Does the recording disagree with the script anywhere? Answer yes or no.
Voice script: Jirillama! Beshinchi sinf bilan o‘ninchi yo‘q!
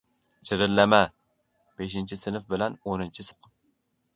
no